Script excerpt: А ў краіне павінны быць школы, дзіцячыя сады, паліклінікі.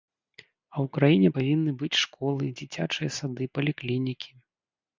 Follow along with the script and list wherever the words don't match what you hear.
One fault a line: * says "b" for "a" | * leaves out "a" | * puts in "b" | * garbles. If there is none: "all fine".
all fine